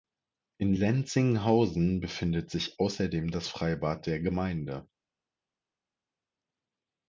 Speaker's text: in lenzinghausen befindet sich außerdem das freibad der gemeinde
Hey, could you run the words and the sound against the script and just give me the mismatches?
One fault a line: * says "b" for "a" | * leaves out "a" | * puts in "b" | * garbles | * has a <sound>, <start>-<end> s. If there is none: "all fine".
all fine